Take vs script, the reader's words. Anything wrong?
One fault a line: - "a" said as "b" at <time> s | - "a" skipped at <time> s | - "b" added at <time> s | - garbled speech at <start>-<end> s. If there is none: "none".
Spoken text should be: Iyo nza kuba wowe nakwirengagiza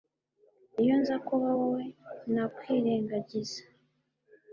none